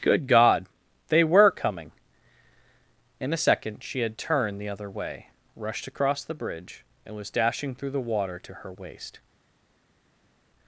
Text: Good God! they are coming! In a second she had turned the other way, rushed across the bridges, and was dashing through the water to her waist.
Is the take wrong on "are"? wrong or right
wrong